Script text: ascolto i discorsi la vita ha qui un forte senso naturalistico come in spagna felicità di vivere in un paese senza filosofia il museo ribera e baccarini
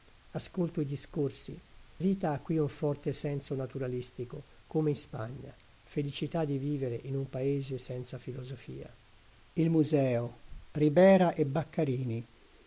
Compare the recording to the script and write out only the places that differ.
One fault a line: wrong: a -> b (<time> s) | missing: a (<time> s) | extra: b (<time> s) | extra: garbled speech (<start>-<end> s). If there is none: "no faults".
missing: la (1.6 s)